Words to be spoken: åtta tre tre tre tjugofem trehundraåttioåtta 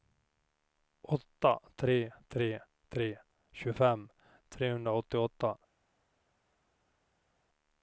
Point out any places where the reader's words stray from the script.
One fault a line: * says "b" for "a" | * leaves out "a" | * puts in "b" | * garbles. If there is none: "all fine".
all fine